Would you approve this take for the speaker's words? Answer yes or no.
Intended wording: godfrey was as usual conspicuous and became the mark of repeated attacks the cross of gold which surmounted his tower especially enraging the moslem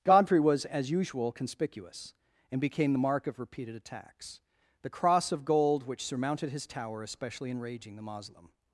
yes